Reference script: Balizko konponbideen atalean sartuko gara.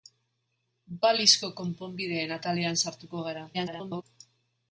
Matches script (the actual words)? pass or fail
fail